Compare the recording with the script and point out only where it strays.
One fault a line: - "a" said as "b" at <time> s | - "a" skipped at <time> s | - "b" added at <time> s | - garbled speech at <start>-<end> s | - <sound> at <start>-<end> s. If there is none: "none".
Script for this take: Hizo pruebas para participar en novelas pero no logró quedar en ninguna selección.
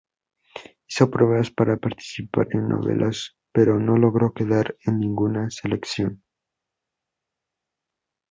none